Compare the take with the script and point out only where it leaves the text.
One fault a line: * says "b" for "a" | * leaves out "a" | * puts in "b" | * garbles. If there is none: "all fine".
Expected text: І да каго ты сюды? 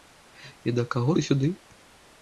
all fine